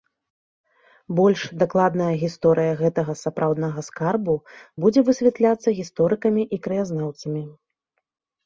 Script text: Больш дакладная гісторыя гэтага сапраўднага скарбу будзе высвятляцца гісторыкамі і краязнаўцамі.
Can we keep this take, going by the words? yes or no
yes